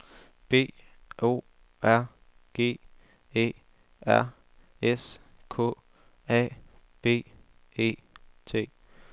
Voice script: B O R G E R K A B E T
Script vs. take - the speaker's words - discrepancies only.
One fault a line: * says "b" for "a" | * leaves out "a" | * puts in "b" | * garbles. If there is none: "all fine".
* puts in "S"